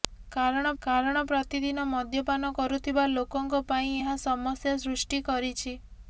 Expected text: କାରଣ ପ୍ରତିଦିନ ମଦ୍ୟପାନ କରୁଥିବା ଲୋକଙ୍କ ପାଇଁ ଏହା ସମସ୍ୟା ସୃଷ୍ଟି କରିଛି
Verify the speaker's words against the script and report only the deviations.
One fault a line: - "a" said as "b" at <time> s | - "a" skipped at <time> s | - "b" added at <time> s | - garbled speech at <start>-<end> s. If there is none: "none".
- "କାରଣ" added at 0.8 s